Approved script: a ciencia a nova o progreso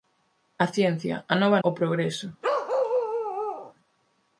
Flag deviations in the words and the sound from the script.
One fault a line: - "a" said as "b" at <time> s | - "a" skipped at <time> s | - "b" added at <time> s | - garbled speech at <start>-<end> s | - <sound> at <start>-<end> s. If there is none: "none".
- bark at 2.4-3.7 s